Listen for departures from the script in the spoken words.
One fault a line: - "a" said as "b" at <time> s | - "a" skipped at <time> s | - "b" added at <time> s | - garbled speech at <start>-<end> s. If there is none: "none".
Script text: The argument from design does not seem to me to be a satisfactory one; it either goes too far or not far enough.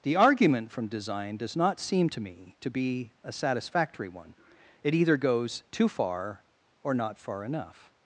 none